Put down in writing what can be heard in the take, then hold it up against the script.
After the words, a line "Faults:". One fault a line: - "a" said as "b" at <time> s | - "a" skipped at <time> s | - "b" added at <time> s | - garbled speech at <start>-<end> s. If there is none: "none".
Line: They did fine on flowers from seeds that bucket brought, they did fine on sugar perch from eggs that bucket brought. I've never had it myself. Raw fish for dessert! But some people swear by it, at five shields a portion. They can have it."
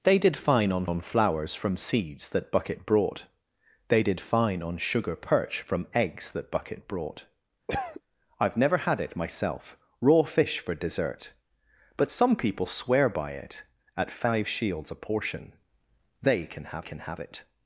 They did fine on on flowers from seeds that bucket brought, they did fine on sugar perch from eggs that bucket brought. I've never had it myself. Raw fish for dessert! But some people swear by it, at five shields a portion. They can have can have it."
Faults:
- "on" added at 0.8 s
- "can have" added at 16.8 s